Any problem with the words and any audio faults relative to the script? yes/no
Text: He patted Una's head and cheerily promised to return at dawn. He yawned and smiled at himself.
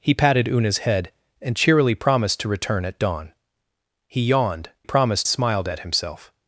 yes